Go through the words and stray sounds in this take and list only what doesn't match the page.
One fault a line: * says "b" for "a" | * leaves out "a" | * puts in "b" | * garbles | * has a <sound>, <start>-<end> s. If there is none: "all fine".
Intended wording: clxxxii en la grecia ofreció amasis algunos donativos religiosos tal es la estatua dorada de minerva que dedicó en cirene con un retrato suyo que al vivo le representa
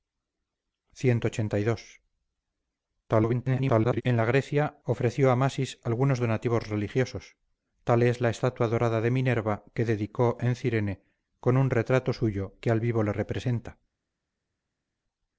* garbles